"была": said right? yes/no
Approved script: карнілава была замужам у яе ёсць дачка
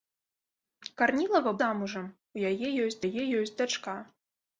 no